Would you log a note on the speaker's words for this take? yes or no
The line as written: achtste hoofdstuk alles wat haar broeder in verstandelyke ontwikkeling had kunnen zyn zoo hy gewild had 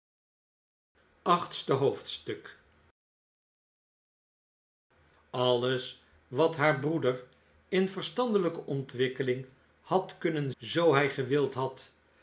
yes